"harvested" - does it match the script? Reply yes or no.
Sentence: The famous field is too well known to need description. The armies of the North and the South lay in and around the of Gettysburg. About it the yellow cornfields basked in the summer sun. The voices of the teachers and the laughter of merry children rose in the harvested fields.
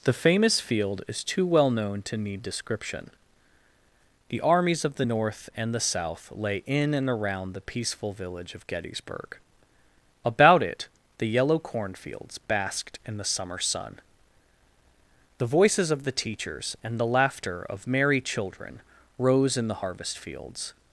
no